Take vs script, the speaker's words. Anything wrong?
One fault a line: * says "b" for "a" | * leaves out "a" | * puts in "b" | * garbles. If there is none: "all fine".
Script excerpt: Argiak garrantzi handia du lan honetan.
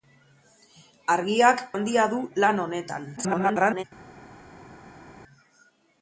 * leaves out "garrantzi"
* garbles